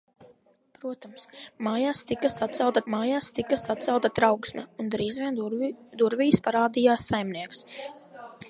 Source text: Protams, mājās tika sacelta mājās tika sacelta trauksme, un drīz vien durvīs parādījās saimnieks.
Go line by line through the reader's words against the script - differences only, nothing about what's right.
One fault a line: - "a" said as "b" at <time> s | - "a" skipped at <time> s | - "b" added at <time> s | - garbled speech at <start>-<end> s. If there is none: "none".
none